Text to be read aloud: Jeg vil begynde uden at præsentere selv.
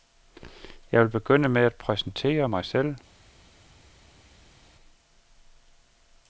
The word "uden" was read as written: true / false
false